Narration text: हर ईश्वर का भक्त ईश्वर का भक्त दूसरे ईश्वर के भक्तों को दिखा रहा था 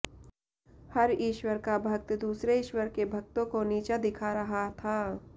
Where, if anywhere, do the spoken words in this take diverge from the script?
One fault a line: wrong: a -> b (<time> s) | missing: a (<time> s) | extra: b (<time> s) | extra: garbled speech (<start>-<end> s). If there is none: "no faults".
missing: ईश्वर का भक्त (2.1 s)
extra: नीचा (3.6 s)